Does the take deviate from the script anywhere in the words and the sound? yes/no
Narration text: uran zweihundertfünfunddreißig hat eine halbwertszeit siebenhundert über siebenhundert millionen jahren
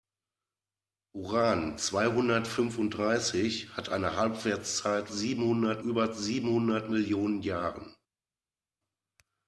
no